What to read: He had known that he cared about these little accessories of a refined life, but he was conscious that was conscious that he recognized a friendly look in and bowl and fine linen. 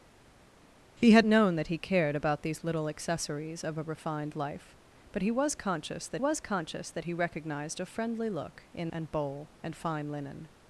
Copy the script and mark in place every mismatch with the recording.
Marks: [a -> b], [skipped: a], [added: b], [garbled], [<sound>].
He had known that he cared about these little accessories of a refined life, but he was conscious that was conscious that he recognized a friendly look in and bowl and fine linen.